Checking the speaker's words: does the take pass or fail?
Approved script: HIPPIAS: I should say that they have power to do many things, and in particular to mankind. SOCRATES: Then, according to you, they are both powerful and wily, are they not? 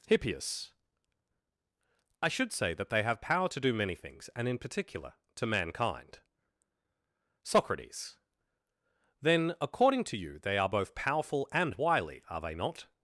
pass